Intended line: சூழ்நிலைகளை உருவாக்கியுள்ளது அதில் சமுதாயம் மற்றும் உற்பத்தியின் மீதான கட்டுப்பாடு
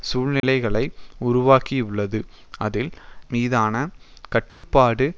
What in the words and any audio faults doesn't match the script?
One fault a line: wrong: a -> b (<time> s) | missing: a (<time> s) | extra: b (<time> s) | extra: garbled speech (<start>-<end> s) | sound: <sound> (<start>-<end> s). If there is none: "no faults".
sound: dropout (0.4-0.4 s)
missing: சமுதாயம் மற்றும் உற்பத்தியின் (2.9 s)
sound: dropout (4.5-4.6 s)